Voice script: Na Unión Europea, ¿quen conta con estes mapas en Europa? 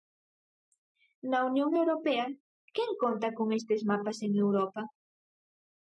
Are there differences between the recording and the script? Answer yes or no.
no